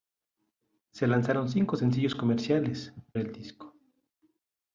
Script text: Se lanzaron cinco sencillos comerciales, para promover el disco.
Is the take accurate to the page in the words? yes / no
no